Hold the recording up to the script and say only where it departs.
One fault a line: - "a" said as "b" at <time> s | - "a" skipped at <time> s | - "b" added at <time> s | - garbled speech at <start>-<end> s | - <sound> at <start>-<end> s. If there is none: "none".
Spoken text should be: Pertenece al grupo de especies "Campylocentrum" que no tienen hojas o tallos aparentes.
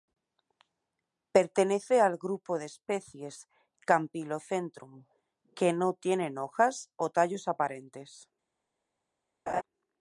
- laugh at 9.5-9.6 s